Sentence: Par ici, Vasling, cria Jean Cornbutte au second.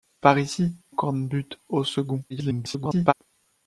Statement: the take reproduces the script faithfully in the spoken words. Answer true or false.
false